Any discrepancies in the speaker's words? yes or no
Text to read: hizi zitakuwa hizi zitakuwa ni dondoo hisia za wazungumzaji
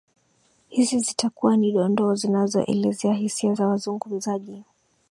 yes